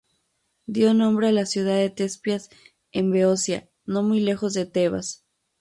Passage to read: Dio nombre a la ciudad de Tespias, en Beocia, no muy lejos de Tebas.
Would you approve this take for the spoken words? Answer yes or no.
yes